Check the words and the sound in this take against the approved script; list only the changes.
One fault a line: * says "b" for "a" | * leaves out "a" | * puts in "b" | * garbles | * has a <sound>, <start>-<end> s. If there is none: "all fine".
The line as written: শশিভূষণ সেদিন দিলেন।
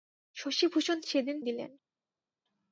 all fine